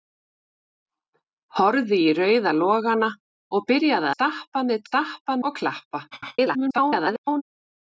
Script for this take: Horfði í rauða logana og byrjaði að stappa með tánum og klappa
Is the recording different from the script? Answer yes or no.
yes